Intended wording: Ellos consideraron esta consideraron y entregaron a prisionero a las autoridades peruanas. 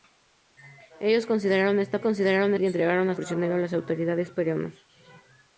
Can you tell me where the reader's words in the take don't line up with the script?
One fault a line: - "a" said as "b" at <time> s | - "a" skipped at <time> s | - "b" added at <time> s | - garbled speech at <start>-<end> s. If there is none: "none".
none